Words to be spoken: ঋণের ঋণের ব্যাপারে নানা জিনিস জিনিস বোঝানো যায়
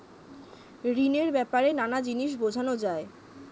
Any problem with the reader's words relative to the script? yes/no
yes